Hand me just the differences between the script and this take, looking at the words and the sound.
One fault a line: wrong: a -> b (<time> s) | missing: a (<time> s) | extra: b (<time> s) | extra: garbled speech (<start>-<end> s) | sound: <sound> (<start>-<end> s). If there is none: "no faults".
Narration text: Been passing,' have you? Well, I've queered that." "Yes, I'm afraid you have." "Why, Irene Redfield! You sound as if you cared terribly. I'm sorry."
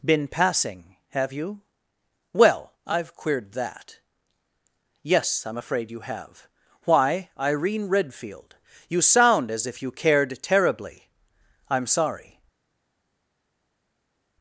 no faults